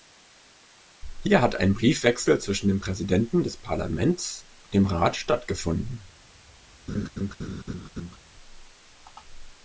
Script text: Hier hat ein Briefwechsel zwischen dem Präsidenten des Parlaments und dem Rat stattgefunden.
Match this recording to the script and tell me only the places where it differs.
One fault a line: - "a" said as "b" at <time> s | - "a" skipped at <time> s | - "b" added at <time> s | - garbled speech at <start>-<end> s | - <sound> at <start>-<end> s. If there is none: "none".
- laugh at 6.9-8.2 s